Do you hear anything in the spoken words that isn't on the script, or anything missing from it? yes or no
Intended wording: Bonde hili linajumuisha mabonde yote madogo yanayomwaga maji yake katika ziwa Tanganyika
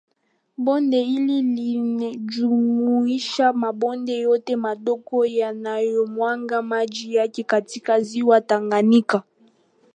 no